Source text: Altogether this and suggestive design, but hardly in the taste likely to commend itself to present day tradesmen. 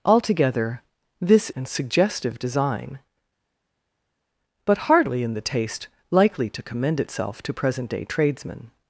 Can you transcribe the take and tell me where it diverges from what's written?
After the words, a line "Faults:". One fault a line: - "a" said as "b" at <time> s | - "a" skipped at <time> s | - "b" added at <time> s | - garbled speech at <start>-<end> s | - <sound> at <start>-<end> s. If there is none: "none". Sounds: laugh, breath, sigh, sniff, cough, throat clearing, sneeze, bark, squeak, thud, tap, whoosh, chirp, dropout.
Altogether this and suggestive design, but hardly in the taste likely to commend itself to present day tradesmen.
Faults:
none